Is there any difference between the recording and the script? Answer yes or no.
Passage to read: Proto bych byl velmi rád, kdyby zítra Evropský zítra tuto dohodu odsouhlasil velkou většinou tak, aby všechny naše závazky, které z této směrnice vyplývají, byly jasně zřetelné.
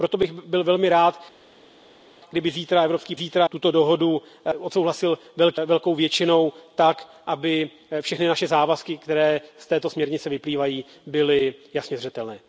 no